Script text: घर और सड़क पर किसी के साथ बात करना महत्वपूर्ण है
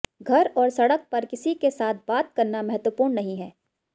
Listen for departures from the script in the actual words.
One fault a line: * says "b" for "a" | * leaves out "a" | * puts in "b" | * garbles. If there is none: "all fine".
* puts in "नहीं"